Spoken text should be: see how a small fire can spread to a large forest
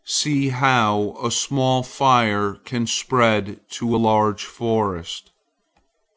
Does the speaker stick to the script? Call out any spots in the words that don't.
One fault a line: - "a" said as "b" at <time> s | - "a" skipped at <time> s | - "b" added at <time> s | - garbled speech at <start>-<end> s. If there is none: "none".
none